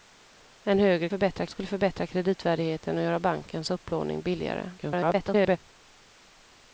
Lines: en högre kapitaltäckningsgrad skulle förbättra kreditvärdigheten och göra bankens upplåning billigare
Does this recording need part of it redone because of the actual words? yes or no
yes